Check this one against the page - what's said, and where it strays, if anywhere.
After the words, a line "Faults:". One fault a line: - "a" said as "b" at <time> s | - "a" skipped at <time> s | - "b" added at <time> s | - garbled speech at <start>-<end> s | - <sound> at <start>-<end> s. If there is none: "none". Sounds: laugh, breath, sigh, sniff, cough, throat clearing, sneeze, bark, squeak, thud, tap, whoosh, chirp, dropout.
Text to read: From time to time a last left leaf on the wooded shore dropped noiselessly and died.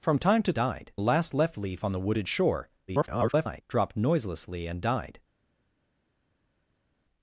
From time to died a last left leaf on the wooded shore [garbled] dropped noiselessly and died.
Faults:
- "time" said as "died" at 0.5 s
- garbled speech at 2.9-3.6 s